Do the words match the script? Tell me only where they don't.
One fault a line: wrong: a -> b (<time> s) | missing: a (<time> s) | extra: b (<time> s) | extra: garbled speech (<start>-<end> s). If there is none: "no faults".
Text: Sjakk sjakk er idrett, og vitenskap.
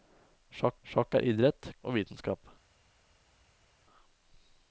no faults